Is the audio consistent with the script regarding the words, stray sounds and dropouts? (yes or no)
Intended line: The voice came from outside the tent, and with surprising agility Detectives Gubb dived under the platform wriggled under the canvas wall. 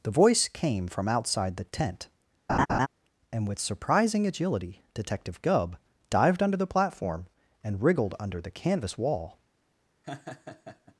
no